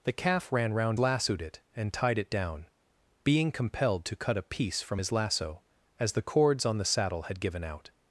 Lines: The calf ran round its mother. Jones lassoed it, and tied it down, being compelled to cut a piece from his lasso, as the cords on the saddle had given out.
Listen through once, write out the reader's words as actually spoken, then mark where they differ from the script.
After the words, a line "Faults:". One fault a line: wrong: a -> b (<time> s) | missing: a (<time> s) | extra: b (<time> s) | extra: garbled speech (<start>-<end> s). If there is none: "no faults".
The calf ran round lassoed it, and tied it down, being compelled to cut a piece from his lasso, as the cords on the saddle had given out.
Faults:
missing: its mother Jones (1.0 s)